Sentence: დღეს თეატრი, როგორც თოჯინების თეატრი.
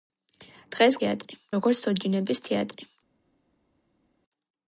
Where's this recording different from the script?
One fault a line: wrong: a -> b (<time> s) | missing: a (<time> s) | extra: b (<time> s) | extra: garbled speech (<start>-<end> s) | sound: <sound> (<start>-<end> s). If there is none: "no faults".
no faults